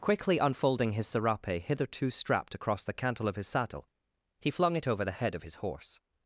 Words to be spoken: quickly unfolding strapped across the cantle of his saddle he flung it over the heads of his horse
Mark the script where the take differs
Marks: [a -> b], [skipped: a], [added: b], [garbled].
quickly unfolding [added: his serape hitherto] strapped across the cantle of his saddle he flung it over the [heads -> head] of his horse